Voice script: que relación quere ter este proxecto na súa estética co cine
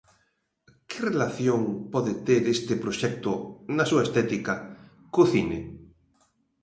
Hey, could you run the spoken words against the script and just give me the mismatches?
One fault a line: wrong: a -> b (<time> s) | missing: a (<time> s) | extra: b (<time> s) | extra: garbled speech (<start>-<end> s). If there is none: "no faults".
wrong: quere -> pode (1.9 s)